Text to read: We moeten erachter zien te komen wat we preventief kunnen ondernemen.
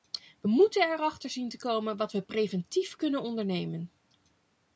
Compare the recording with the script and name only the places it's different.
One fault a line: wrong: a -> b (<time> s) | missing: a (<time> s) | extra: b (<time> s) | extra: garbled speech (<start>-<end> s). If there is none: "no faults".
no faults